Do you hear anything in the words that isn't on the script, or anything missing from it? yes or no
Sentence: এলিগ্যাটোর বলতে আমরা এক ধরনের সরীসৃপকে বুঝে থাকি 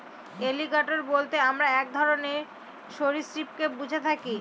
no